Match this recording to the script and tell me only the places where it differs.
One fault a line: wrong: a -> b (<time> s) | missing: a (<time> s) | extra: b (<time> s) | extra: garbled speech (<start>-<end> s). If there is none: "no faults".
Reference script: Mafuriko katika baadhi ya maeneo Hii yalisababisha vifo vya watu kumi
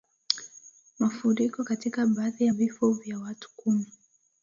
missing: maeneo Hii yalisababisha (2.5 s)